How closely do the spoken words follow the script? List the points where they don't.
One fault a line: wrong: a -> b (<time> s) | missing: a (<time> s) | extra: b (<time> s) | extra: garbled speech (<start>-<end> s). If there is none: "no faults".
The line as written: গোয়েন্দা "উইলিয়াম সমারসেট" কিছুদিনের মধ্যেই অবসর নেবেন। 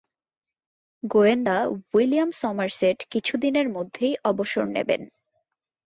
no faults